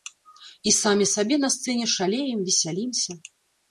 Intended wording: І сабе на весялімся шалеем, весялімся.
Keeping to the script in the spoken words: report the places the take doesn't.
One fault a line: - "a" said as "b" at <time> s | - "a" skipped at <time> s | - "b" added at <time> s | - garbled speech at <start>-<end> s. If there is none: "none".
- "самі" added at 0.8 s
- "весялімся" said as "сцэне" at 1.6 s